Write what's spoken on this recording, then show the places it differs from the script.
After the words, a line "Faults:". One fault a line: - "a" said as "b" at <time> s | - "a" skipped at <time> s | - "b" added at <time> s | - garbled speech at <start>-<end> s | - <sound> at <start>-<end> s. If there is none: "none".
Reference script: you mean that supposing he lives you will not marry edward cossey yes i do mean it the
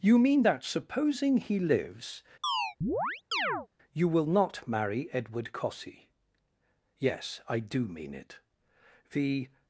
you mean that supposing he lives you will not marry edward cossey yes i do mean it the
Faults:
- chirp at 2.4-3.7 s